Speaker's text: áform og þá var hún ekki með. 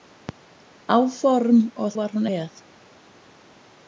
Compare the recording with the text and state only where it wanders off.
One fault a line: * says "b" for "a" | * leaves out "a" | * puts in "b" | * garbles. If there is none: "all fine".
* leaves out "þá"
* leaves out "ekki"